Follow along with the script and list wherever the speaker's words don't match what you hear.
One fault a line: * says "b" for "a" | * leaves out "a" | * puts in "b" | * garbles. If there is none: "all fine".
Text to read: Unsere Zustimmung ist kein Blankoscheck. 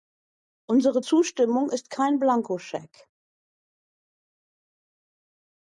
all fine